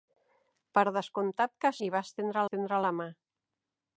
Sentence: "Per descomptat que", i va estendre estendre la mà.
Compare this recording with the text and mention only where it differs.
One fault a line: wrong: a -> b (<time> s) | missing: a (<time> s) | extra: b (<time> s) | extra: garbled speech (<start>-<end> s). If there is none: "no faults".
no faults